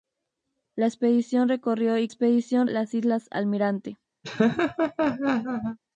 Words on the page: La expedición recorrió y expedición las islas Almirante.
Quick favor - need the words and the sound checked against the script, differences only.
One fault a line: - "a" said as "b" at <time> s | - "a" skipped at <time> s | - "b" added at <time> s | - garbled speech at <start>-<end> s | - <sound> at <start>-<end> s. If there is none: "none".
- laugh at 4.2-5.8 s